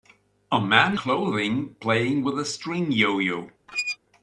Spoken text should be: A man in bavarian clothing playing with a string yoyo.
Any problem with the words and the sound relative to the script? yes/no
yes